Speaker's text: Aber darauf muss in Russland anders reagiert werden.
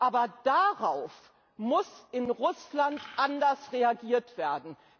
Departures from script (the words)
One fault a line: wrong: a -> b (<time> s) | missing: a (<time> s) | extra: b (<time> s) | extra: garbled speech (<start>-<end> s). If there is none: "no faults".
no faults